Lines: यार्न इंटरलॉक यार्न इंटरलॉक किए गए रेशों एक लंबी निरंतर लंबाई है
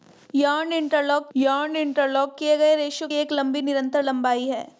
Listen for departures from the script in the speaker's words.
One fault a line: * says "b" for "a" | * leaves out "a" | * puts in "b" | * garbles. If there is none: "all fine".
all fine